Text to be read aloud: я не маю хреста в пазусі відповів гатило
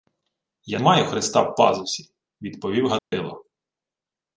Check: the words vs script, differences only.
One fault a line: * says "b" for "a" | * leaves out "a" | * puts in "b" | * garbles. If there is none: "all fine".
* leaves out "не"